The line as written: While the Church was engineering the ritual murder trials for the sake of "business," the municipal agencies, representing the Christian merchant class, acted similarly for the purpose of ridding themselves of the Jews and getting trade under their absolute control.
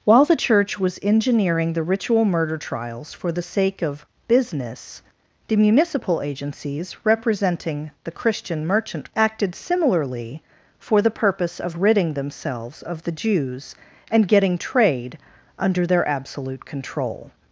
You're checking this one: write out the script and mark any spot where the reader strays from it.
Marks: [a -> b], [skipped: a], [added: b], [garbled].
While the Church was engineering the ritual murder trials for the sake of "business," the municipal agencies, representing the Christian merchant [skipped: class,] acted similarly for the purpose of ridding themselves of the Jews and getting trade under their absolute control.